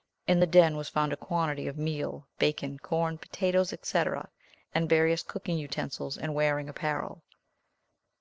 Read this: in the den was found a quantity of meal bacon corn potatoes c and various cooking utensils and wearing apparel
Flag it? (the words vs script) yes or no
no